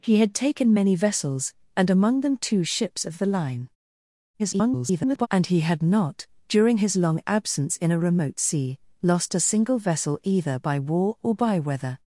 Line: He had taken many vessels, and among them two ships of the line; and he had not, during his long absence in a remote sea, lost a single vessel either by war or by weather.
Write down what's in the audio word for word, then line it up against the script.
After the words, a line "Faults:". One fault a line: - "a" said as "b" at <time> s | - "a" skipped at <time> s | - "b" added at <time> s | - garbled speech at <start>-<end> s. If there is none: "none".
He had taken many vessels, and among them two ships of the line; [garbled] and he had not, during his long absence in a remote sea, lost a single vessel either by war or by weather.
Faults:
- garbled speech at 4.4-5.3 s